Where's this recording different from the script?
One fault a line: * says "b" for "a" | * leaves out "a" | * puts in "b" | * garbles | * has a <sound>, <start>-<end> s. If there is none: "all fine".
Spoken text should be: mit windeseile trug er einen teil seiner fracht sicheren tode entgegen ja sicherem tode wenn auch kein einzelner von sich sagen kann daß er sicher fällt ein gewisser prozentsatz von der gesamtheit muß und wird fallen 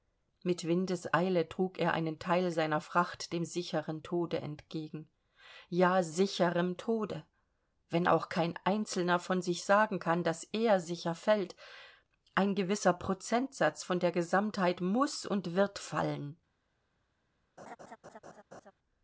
* puts in "dem"
* has a laugh, 17.6-18.7 s